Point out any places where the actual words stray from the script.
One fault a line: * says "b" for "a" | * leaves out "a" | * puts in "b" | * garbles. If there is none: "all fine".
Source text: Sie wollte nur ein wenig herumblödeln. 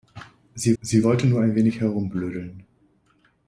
* puts in "sie"